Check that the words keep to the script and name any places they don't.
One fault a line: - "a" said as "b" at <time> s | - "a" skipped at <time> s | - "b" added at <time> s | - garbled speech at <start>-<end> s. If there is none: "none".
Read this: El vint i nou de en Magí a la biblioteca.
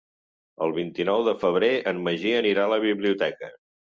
- "febrer" added at 1.4 s
- "anirà" added at 2.4 s